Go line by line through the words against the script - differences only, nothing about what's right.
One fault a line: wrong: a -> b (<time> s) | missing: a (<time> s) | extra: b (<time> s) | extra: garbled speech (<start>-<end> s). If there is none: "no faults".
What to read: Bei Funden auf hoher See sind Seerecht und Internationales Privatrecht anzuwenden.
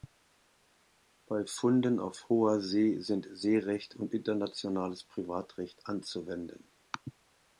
no faults